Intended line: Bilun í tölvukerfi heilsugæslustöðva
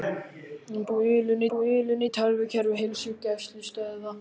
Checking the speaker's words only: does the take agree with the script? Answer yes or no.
no